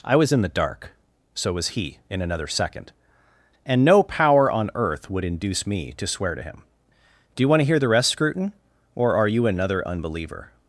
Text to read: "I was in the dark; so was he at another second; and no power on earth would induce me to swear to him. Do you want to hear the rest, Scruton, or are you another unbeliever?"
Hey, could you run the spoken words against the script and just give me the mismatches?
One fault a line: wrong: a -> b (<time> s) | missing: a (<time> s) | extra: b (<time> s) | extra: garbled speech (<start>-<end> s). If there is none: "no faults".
wrong: at -> in (2.1 s)